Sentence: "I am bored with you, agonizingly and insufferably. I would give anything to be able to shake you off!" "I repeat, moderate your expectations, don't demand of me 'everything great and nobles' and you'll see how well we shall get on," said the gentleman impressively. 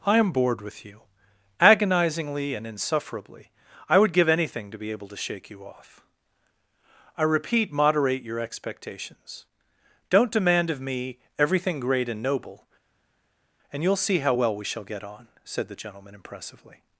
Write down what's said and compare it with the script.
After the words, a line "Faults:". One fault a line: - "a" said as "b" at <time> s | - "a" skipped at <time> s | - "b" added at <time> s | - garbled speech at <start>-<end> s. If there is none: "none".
"I am bored with you, agonizingly and insufferably. I would give anything to be able to shake you off!" "I repeat, moderate your expectations, don't demand of me 'everything great and noble' and you'll see how well we shall get on," said the gentleman impressively.
Faults:
- "nobles" said as "noble" at 12.2 s